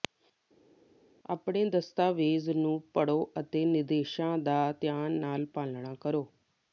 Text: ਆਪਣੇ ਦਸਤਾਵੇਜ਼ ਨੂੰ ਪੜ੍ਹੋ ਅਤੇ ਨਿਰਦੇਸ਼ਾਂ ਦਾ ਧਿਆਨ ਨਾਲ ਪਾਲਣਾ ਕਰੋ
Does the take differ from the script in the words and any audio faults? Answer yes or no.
no